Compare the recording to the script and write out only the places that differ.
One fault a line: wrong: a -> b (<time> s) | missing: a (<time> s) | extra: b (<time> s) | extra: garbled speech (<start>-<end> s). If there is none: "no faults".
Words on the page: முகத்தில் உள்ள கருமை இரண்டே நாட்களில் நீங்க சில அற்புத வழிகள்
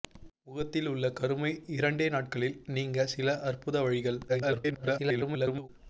extra: garbled speech (4.3-5.7 s)